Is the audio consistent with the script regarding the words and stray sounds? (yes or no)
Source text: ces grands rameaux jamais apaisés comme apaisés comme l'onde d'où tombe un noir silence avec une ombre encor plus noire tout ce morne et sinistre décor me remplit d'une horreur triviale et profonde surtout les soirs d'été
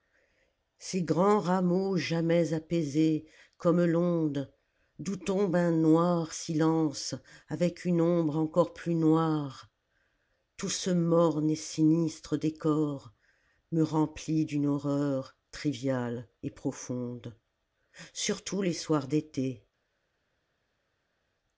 no